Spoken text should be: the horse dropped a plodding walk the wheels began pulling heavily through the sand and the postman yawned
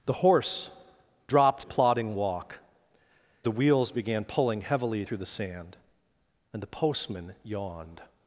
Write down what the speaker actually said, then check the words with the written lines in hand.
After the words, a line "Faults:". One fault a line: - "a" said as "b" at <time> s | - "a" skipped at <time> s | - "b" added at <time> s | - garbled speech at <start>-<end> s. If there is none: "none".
the horse dropped a plodding walk the wheels began pulling heavily through the sand and the postman yawned
Faults:
none